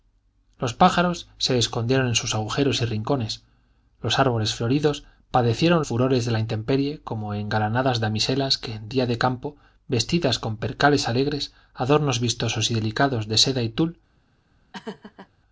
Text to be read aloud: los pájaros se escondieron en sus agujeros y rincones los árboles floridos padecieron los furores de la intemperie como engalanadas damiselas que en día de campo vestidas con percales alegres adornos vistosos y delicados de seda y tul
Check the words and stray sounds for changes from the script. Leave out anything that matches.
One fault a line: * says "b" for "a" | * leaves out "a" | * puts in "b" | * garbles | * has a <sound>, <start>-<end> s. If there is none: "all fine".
* leaves out "los"
* has a laugh, 14.7-15.3 s